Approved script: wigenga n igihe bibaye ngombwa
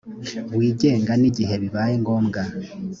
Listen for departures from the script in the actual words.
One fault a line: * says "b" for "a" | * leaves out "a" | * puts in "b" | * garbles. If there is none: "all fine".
all fine